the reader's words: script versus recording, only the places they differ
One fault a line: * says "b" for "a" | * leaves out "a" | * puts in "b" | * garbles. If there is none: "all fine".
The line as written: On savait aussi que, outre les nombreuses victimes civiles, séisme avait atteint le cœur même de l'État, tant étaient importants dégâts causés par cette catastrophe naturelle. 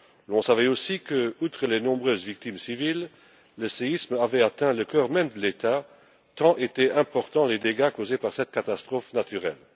* puts in "le"
* puts in "les"